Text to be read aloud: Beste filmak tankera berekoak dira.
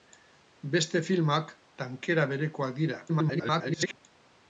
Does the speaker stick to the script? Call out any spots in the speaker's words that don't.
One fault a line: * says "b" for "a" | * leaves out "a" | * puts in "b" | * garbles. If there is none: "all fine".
* garbles